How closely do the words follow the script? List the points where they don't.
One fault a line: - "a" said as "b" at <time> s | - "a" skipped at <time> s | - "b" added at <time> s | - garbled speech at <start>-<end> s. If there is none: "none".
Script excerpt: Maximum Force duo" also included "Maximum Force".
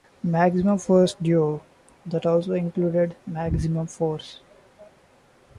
- "that" added at 2.1 s